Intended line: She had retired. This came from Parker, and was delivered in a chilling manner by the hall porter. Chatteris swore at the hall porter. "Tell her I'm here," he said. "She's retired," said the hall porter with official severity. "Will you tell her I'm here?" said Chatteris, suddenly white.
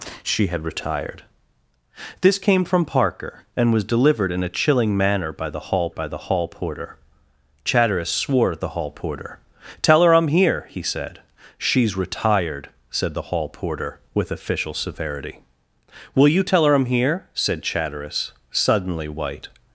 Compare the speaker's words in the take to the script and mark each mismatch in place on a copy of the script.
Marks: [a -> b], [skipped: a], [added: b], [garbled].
She had retired. This came from Parker, and was delivered in a chilling manner by the hall [added: by the hall] porter. Chatteris swore at the hall porter. "Tell her I'm here," he said. "She's retired," said the hall porter with official severity. "Will you tell her I'm here?" said Chatteris, suddenly white.